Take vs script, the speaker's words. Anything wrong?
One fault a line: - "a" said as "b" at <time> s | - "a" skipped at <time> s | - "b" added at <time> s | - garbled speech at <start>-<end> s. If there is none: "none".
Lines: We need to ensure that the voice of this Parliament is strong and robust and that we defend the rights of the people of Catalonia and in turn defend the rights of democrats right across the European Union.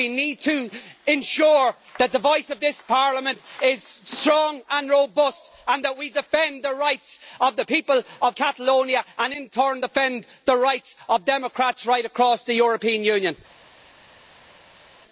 none